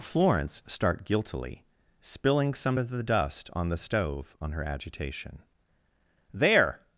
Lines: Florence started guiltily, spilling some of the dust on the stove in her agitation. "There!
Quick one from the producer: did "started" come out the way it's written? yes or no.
no